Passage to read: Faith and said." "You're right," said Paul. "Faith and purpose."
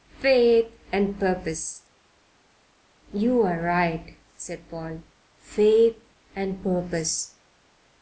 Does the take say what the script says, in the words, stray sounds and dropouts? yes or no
no